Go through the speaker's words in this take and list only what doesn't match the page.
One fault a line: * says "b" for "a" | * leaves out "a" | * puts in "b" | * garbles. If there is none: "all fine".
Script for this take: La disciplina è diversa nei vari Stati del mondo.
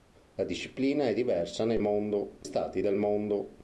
* says "mondo" for "vari"